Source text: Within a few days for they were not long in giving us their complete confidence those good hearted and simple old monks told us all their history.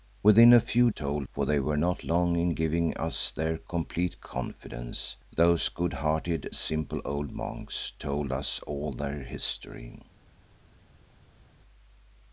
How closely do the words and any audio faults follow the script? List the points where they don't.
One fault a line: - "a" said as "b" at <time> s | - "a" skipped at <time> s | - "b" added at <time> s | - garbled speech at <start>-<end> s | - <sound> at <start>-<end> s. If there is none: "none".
- "days" said as "told" at 0.9 s
- "and" skipped at 6.5 s